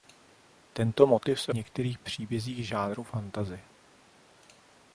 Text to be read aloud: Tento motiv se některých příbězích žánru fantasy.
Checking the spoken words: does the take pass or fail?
pass